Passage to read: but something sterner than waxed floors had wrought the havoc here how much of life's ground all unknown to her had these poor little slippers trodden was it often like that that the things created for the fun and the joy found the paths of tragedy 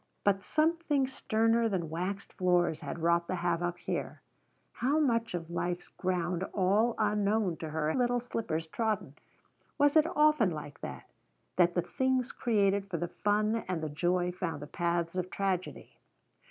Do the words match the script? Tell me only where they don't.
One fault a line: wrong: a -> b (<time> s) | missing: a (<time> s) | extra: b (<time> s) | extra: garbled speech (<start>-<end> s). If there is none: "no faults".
missing: had these poor (7.9 s)